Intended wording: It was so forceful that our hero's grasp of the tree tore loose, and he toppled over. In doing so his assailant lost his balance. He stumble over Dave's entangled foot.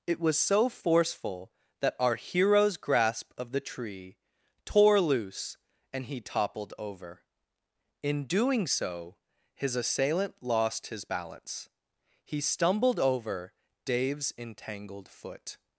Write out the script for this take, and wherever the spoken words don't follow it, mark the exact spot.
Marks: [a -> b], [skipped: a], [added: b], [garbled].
It was so forceful that our hero's grasp of the tree tore loose, and he toppled over. In doing so his assailant lost his balance. He [stumble -> stumbled] over Dave's entangled foot.